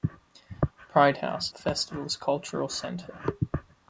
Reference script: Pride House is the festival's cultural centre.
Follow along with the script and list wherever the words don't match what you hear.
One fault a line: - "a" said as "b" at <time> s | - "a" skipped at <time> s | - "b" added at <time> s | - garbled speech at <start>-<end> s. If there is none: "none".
- "is" skipped at 1.5 s